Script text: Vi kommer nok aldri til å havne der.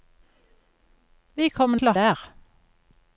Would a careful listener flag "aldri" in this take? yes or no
yes